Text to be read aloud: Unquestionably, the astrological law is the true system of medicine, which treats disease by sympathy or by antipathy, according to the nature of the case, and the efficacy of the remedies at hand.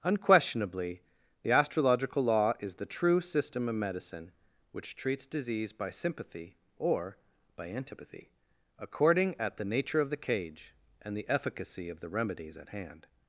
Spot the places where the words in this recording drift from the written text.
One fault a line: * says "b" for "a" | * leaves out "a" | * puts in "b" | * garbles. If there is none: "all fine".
* says "at" for "to"
* says "cage" for "case"